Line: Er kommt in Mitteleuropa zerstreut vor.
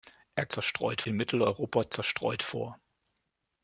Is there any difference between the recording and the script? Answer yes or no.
yes